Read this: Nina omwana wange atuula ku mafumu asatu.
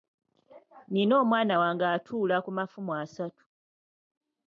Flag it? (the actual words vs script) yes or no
no